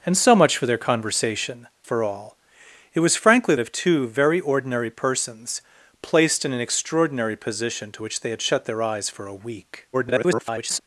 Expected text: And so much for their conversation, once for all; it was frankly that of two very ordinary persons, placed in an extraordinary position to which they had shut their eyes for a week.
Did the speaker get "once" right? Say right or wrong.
wrong